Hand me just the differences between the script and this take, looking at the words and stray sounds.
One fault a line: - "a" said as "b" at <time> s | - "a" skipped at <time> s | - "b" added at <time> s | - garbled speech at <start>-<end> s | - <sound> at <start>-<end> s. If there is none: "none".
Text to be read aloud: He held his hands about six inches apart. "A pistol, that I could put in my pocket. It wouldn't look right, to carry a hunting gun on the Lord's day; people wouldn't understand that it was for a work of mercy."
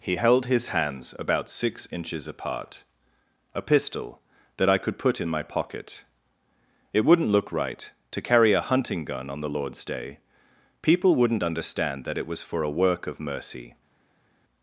none